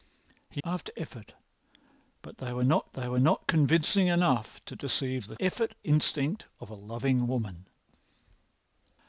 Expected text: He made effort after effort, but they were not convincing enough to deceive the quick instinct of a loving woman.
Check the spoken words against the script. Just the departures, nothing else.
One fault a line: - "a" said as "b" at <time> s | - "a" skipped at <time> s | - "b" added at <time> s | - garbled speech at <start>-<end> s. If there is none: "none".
- "made effort" skipped at 0.6 s
- "they were not" added at 2.9 s
- "quick" said as "effort" at 5.4 s